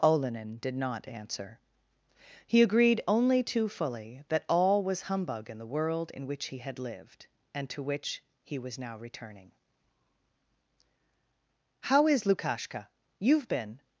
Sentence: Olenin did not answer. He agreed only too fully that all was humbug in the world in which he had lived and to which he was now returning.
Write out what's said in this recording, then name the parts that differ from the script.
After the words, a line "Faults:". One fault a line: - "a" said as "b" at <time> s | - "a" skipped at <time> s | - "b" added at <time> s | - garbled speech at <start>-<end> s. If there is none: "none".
Olenin did not answer. He agreed only too fully that all was humbug in the world in which he had lived and to which he was now returning. 'How is Lukashka? You've been
Faults:
- "How is Lukashka You've been" added at 11.8 s